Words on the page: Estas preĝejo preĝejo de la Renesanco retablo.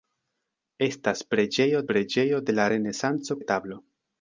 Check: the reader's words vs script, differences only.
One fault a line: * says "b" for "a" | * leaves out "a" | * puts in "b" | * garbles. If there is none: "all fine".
all fine